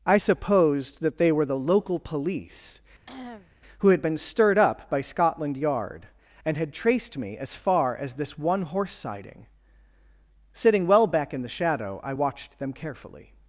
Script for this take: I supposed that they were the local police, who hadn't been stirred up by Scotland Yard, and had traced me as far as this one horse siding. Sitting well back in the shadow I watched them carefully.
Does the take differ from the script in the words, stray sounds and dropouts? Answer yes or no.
yes